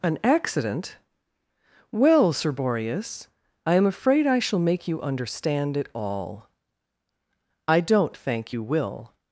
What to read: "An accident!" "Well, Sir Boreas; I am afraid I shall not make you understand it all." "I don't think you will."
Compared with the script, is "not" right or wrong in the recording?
wrong